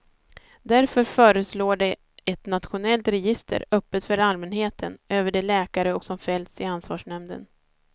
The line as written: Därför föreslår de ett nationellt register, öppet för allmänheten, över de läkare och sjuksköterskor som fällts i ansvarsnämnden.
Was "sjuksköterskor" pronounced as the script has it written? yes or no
no